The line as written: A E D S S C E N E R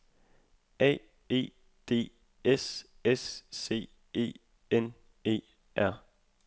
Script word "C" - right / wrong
right